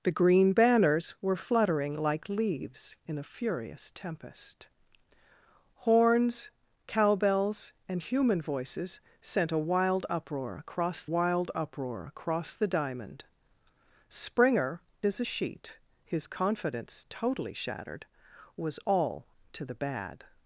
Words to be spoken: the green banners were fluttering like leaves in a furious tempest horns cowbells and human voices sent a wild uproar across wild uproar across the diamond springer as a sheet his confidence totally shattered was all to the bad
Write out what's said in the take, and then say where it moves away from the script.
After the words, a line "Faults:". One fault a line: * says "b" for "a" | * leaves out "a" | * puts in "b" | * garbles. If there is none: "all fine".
the green banners were fluttering like leaves in a furious tempest horns cowbells and human voices sent a wild uproar across wild uproar across the diamond springer as a sheet his confidence totally shattered was all to the bad
Faults:
all fine